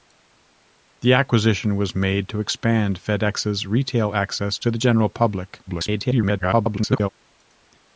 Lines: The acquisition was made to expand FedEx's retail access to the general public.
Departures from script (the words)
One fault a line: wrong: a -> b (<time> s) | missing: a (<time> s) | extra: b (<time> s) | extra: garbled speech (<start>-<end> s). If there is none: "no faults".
extra: garbled speech (5.7-7.1 s)